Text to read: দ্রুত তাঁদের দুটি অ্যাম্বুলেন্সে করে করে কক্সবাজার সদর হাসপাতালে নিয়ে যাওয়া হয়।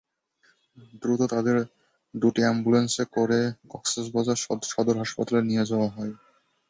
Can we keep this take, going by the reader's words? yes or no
no